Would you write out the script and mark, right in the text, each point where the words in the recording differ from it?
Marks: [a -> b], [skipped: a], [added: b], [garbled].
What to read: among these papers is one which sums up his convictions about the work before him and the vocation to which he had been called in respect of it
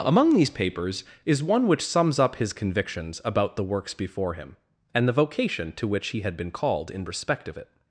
among these papers is one which sums up his convictions about the [work -> works] before him and the vocation to which he had been called in respect of it